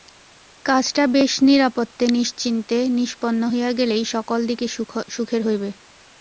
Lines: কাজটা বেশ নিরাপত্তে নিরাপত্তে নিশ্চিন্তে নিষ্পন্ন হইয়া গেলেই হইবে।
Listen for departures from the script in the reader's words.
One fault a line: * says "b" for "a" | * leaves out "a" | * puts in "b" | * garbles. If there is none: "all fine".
* leaves out "নিরাপত্তে"
* puts in "সকল দিকে সুখের"